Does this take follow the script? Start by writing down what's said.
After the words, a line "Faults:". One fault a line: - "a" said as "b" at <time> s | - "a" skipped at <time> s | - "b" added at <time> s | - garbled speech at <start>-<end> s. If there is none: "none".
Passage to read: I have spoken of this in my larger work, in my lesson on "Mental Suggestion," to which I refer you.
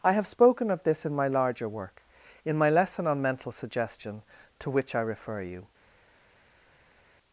I have spoken of this in my larger work, in my lesson on "Mental Suggestion," to which I refer you.
Faults:
none